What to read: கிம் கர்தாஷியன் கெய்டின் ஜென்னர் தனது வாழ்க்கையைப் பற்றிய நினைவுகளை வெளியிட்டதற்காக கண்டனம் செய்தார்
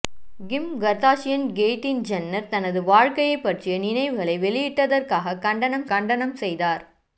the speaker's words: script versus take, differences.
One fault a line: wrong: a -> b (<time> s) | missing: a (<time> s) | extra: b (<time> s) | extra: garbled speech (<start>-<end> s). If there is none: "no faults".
extra: கண்டனம் (5.8 s)